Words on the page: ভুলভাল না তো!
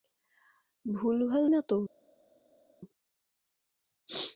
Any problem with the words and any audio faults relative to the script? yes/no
no